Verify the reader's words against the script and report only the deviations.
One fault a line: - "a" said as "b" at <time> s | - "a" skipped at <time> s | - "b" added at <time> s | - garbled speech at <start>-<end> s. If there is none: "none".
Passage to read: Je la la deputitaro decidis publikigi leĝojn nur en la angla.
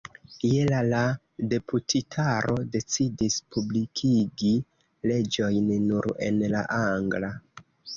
none